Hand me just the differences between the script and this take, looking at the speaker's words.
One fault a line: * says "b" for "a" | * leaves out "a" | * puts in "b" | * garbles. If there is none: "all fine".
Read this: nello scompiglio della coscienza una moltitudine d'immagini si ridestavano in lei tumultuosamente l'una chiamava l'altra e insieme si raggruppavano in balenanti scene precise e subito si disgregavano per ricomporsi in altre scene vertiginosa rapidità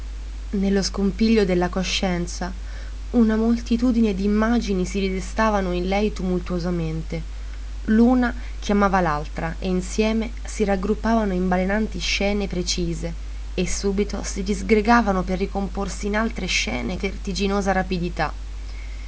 all fine